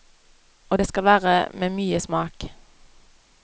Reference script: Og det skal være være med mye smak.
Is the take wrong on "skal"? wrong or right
right